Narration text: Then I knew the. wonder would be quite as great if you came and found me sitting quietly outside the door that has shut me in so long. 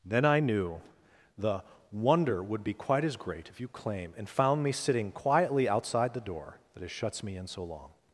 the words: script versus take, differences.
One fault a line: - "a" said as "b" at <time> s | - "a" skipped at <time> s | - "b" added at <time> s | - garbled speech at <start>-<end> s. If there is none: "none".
- "came" said as "claim" at 3.7 s
- "shut" said as "shuts" at 6.9 s